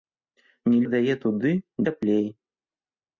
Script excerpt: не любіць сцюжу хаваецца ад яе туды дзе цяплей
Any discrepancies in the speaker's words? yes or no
yes